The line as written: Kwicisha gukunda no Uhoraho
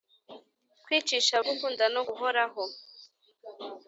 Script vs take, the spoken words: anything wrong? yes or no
no